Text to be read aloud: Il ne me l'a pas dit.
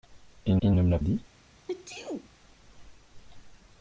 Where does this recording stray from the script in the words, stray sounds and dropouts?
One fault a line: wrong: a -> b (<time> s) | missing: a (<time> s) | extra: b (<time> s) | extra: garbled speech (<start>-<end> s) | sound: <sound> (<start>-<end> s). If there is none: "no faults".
extra: il (0.6 s)
missing: pas (1.0 s)
sound: sneeze (1.6-2.3 s)